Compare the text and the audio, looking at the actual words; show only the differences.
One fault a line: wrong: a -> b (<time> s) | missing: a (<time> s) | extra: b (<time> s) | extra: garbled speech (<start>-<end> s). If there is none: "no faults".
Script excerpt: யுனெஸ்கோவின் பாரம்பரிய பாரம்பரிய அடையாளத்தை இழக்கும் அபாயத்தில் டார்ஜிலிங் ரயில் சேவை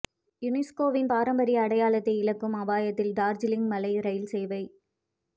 missing: பாரம்பரிய (1.6 s)
extra: மலை (3.7 s)